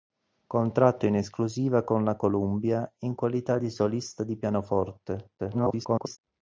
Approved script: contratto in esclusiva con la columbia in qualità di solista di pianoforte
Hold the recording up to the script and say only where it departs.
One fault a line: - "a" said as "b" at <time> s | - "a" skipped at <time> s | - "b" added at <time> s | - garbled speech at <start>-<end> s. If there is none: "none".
- garbled speech at 5.4-6.2 s